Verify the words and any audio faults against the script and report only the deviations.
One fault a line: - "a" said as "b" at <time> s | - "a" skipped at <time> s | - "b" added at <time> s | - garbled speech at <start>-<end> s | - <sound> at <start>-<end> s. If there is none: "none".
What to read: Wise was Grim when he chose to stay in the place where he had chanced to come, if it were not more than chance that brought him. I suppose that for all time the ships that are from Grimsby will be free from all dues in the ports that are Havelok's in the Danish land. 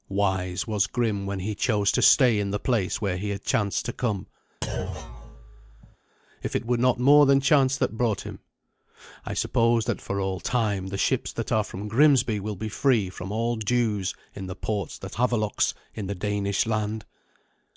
- thud at 4.6-6.0 s
- "are" skipped at 15.2 s